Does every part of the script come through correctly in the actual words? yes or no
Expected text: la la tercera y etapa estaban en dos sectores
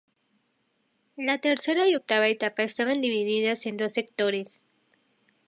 no